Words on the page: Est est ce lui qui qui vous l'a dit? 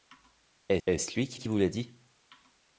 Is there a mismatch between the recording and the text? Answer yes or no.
no